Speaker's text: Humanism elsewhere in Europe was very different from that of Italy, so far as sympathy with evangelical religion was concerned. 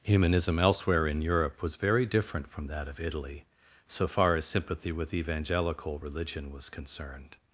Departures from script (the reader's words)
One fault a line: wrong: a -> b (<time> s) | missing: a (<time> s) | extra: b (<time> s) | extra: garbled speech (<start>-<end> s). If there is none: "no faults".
no faults